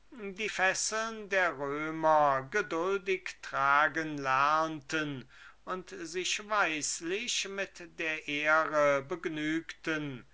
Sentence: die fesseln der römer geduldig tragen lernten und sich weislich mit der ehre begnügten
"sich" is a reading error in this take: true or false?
false